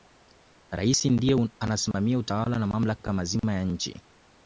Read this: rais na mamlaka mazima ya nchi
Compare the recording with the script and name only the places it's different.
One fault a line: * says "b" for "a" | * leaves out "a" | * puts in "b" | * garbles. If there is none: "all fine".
* puts in "ndiye anasimamia utawala"